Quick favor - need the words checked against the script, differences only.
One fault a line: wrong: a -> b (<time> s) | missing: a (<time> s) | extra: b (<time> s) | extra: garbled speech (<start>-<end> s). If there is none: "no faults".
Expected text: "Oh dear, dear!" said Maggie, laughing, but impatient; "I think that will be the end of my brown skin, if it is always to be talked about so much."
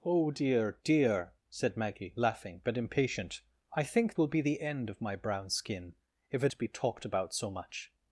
missing: that (4.2 s)
missing: is always (6.5 s)